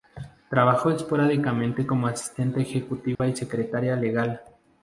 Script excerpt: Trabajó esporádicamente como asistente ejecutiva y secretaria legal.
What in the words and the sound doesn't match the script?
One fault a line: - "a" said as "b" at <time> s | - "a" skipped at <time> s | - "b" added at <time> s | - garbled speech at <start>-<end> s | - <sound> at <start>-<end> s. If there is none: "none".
- dropout at 3.2-3.2 s